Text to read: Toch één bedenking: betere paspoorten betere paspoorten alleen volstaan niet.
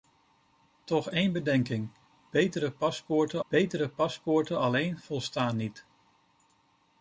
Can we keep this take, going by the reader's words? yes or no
yes